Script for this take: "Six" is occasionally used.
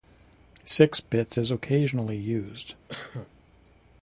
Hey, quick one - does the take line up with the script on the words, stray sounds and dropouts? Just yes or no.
no